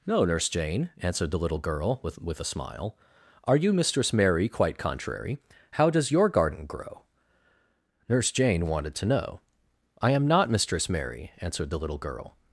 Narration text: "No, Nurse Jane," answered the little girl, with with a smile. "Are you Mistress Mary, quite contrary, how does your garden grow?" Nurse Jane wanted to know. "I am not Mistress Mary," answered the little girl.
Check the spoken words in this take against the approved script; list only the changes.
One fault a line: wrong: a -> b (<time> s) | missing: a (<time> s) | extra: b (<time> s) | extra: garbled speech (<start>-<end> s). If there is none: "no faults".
no faults